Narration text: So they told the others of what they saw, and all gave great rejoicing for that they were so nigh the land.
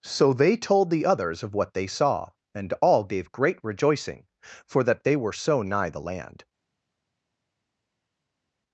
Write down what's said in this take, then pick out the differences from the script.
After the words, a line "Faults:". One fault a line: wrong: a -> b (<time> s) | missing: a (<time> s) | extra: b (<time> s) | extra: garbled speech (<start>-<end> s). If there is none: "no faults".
So they told the others of what they saw, and all gave great rejoicing for that they were so nigh the land.
Faults:
no faults